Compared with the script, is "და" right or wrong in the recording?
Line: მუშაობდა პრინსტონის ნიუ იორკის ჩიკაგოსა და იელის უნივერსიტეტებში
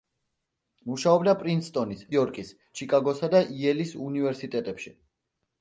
right